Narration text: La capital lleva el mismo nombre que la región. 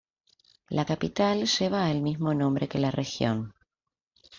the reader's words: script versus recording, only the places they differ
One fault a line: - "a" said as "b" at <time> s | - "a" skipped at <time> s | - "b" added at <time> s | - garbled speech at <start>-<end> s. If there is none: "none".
none